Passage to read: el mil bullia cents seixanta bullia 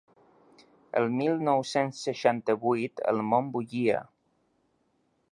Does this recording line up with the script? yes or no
no